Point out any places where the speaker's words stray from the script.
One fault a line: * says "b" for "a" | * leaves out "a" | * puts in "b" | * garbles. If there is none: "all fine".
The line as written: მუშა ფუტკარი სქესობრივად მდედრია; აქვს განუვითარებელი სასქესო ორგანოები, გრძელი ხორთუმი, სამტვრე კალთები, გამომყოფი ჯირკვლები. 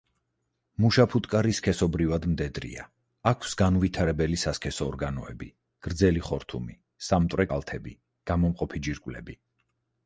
all fine